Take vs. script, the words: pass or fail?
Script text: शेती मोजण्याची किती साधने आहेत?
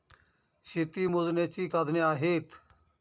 fail